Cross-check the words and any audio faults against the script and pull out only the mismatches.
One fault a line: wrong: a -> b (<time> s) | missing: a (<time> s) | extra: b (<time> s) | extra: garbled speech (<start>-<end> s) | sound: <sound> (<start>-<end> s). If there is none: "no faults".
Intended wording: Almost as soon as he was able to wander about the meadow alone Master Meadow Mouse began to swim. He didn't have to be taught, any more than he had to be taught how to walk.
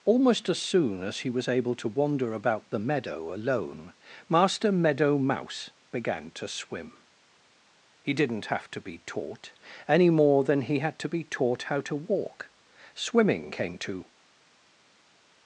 extra: Swimming came to (12.9 s)